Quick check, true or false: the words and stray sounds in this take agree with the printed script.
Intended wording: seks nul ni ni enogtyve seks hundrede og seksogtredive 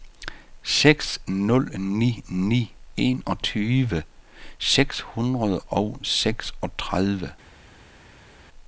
true